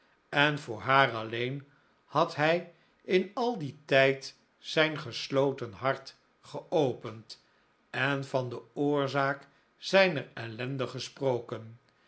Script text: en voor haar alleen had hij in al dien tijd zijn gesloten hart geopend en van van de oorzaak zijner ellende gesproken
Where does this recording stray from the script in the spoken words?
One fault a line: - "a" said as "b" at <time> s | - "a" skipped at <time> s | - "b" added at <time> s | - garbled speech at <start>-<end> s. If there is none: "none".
- "van" skipped at 8.5 s